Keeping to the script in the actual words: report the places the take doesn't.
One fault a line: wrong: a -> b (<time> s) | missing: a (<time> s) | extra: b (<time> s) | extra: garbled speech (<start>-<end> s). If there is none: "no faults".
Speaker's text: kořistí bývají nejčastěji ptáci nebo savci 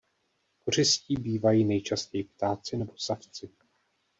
no faults